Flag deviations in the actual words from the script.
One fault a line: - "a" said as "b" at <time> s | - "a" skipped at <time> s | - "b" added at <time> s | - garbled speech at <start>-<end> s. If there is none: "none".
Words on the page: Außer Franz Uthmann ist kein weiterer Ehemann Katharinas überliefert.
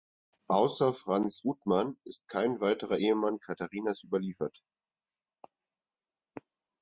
none